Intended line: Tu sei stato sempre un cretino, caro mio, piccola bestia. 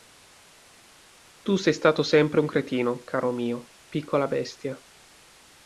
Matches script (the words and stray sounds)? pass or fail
pass